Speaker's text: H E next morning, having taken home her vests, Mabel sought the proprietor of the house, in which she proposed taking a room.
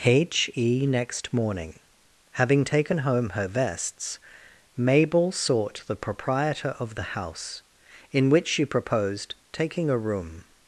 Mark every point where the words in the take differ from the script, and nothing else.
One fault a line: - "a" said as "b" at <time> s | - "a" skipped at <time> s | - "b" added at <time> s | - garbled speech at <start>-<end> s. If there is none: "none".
none